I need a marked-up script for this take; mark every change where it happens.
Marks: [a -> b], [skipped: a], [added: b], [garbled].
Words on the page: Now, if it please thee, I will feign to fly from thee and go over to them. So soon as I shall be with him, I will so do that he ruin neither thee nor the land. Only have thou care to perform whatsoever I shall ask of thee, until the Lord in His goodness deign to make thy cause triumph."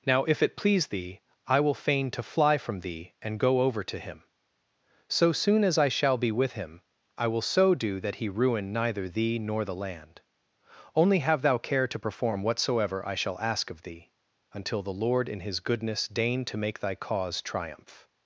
Now, if it please thee, I will feign to fly from thee and go over to [them. -> him] So soon as I shall be with him, I will so do that he ruin neither thee nor the land. Only have thou care to perform whatsoever I shall ask of thee, until the Lord in His goodness deign to make thy cause triumph."